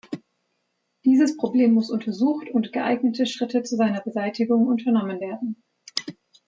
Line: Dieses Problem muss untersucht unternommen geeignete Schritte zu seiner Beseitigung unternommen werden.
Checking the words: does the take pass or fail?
fail